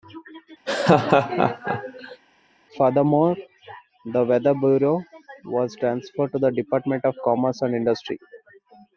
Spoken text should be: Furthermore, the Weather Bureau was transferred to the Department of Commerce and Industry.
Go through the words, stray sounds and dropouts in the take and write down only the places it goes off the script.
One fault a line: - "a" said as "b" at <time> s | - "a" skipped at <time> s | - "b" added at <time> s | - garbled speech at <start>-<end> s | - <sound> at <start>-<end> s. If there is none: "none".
- laugh at 0.7-2.2 s